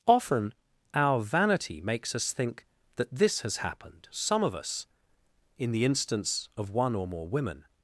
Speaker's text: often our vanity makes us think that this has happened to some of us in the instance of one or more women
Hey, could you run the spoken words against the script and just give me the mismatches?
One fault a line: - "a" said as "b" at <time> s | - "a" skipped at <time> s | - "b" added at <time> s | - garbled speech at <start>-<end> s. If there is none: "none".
- "to" skipped at 4.1 s